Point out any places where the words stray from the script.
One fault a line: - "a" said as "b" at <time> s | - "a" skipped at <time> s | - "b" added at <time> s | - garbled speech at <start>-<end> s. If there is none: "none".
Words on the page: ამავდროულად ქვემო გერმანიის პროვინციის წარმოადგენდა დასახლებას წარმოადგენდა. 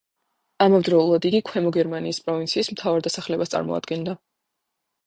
- "იგი" added at 1.3 s
- "წარმოადგენდა" said as "მთავარ" at 2.8 s